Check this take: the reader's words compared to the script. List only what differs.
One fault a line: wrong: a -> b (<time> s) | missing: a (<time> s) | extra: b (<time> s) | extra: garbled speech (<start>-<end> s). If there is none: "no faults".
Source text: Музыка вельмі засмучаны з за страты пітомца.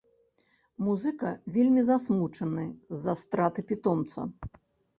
no faults